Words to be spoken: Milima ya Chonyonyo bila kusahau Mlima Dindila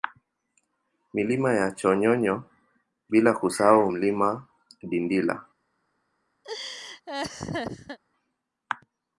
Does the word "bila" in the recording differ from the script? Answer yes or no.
no